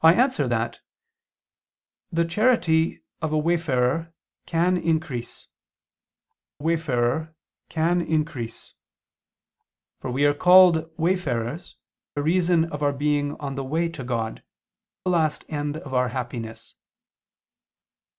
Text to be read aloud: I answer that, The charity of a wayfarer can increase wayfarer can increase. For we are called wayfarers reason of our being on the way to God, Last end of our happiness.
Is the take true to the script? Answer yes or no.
yes